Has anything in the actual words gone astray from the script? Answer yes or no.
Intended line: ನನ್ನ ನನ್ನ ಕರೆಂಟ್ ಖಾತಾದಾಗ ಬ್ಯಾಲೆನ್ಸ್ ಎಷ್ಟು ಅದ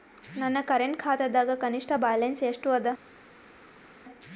yes